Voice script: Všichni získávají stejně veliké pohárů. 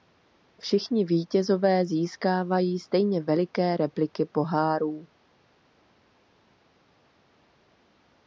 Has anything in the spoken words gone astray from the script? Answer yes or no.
yes